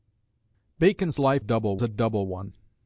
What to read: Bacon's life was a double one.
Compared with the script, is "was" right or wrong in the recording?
wrong